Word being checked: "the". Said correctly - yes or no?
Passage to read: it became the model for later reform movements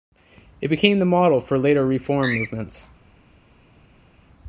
yes